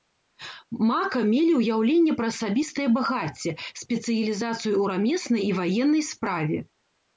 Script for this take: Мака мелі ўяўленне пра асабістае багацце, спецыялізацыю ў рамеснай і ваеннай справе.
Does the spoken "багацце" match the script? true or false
true